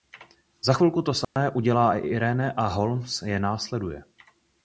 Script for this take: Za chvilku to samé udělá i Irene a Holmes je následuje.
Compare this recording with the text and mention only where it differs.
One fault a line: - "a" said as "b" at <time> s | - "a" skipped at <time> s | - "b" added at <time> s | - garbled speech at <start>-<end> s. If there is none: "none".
none